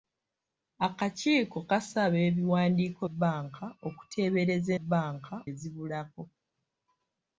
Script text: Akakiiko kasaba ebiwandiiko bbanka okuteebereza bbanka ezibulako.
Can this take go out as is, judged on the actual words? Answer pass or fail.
pass